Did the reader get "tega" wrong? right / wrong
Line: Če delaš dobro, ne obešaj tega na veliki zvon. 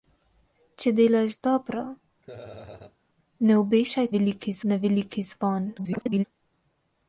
wrong